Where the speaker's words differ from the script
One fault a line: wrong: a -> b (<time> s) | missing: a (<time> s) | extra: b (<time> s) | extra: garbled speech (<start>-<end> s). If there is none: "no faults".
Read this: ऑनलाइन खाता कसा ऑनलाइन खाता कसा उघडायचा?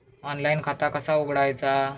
missing: ऑनलाइन खाता कसा (1.2 s)